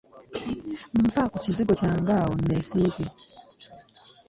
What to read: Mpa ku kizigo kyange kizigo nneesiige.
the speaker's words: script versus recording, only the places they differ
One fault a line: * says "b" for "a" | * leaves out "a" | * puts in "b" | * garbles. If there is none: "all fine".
* says "awo" for "kizigo"